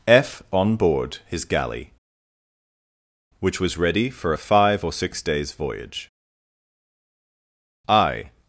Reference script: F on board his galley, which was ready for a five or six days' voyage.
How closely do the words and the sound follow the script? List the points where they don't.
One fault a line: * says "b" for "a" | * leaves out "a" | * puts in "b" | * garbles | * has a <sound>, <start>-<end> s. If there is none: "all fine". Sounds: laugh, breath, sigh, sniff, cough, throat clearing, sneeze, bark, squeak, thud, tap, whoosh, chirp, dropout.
* puts in "I"